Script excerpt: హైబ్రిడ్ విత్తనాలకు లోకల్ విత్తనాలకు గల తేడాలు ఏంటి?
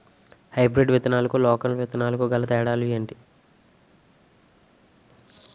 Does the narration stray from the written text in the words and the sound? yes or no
no